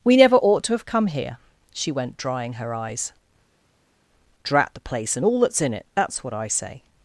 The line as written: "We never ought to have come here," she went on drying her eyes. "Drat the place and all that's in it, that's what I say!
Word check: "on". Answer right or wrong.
wrong